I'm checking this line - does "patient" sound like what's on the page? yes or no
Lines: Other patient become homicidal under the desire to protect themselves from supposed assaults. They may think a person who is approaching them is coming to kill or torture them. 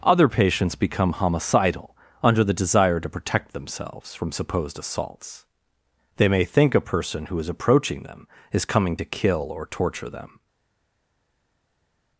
no